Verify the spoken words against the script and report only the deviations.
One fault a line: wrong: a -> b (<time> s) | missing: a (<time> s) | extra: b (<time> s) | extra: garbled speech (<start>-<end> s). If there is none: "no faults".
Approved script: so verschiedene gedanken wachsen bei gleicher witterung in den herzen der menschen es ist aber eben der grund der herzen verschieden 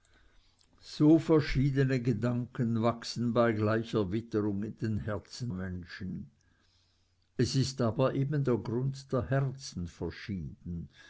missing: der (5.5 s)